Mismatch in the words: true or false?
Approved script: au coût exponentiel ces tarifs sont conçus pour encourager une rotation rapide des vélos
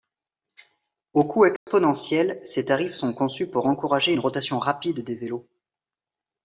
false